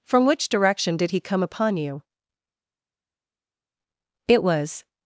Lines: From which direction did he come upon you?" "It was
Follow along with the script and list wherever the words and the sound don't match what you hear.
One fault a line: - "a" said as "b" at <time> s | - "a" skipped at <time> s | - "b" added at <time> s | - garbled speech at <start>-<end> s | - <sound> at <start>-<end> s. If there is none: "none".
none